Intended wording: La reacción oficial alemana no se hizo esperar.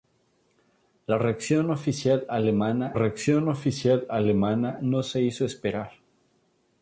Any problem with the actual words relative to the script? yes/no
yes